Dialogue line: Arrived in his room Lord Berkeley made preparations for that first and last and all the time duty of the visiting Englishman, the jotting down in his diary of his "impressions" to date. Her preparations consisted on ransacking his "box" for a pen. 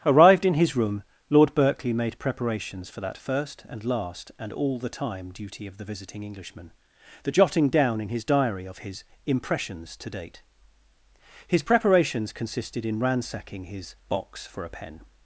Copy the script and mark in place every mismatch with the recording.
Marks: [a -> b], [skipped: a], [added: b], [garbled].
Arrived in his room Lord Berkeley made preparations for that first and last and all the time duty of the visiting Englishman, the jotting down in his diary of his "impressions" to date. [Her -> His] preparations consisted [on -> in] ransacking his "box" for a pen.